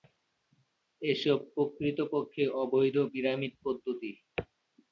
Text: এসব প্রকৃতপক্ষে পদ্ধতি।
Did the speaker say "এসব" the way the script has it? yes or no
yes